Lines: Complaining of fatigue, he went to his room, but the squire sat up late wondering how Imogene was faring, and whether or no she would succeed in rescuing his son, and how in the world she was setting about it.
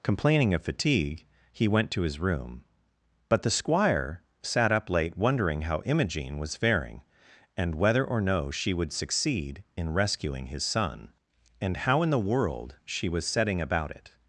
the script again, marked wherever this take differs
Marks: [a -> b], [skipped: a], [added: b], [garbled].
Complaining of fatigue, he went to his room, but the squire sat up late wondering how Imogene was faring, and whether or no she would succeed in rescuing his son, and how in the world she was setting about it.